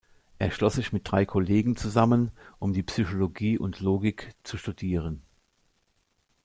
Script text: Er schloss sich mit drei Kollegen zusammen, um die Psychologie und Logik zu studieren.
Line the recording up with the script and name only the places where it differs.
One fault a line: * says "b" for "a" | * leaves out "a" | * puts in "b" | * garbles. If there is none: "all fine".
all fine